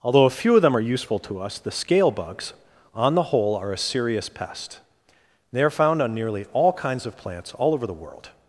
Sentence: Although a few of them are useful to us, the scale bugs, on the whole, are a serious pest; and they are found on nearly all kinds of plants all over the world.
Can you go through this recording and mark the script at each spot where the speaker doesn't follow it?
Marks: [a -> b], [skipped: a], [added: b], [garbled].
Although a few of them are useful to us, the scale bugs, on the whole, are a serious pest; [skipped: and] they are found on nearly all kinds of plants all over the world.